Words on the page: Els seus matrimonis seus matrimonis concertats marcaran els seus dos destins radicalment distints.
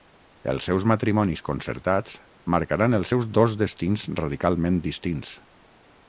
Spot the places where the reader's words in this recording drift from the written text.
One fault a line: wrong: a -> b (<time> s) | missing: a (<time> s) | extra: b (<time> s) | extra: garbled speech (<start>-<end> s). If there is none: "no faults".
missing: seus matrimonis (1.4 s)